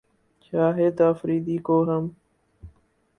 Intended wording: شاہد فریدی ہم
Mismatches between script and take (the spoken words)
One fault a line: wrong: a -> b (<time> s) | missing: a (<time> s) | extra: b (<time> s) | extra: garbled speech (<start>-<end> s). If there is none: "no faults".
extra: کو (1.7 s)